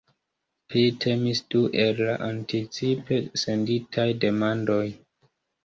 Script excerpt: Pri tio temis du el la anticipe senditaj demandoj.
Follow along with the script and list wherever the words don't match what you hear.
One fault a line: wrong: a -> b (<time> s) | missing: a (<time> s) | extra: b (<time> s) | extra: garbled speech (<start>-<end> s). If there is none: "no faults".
missing: tio (0.8 s)